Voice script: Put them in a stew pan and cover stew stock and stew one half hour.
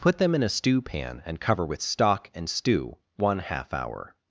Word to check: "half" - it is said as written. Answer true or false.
true